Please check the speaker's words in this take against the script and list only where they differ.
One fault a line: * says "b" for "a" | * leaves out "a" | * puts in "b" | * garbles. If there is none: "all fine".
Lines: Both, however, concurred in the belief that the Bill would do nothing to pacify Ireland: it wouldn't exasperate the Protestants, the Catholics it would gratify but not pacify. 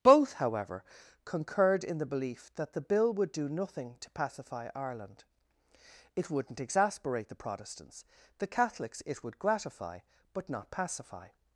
all fine